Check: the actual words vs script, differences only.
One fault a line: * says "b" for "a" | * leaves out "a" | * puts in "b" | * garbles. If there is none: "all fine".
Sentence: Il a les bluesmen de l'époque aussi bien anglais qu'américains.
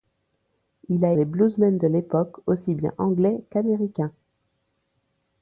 all fine